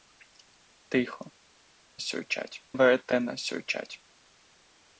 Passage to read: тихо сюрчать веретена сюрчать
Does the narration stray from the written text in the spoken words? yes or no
no